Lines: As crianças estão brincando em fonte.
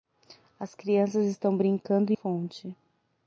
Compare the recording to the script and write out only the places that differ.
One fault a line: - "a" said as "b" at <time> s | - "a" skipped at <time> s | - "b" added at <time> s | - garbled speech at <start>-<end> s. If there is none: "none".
none